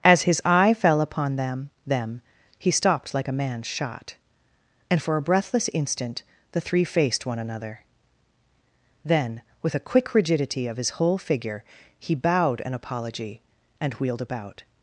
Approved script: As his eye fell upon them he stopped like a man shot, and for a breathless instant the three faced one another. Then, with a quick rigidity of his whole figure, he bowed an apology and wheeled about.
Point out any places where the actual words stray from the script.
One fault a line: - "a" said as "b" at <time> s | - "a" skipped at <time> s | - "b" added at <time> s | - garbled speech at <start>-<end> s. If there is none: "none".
- "them" added at 1.9 s